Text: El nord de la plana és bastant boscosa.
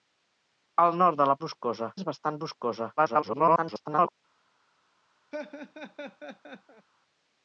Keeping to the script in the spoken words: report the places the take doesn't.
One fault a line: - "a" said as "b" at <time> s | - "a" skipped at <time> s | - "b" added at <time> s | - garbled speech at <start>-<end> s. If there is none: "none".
- "plana" said as "boscosa" at 1.5 s
- garbled speech at 3.0-4.2 s